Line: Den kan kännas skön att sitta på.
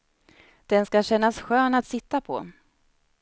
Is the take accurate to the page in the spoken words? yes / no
no